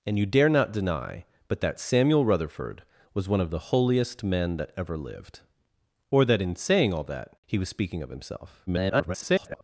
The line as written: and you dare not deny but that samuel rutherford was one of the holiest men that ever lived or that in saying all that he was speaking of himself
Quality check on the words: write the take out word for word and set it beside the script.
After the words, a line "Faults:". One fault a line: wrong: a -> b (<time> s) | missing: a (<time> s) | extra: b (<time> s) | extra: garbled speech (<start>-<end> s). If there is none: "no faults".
and you dare not deny but that samuel rutherford was one of the holiest men that ever lived or that in saying all that he was speaking of himself [garbled]
Faults:
extra: garbled speech (8.7-9.6 s)